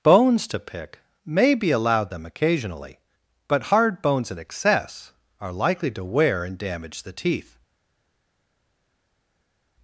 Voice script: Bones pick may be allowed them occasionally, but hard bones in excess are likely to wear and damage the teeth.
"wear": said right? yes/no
yes